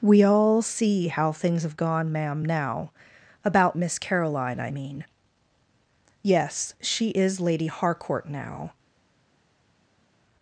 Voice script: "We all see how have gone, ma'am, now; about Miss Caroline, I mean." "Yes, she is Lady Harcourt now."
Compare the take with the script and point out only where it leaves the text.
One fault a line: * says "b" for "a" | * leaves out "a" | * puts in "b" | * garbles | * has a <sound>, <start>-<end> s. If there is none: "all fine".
* puts in "things"